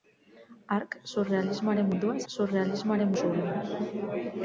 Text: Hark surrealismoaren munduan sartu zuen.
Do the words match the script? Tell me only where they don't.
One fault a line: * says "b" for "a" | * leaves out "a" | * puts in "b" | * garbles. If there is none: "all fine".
* says "surrealismoaren" for "sartu"